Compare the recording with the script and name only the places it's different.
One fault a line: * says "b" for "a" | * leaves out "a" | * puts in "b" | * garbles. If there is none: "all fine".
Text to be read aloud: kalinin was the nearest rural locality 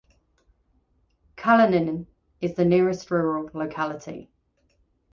* says "is" for "was"